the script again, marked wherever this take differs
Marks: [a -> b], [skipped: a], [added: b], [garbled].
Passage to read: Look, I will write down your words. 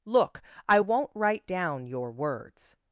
Look, I [will -> won't] write down your words.